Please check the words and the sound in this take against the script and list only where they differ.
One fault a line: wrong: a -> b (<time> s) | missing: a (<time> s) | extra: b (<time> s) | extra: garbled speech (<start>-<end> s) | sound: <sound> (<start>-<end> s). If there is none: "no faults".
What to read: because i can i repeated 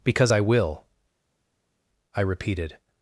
wrong: can -> will (0.4 s)